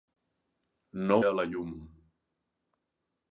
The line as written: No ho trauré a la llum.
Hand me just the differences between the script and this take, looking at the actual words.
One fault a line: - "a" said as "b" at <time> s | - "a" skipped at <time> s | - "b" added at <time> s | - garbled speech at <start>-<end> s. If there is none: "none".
- "ho trauré" skipped at 1.2 s